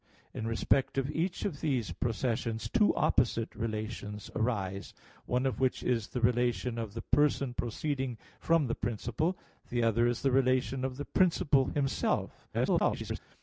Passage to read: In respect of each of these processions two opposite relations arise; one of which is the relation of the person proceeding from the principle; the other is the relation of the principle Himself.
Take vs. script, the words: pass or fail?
fail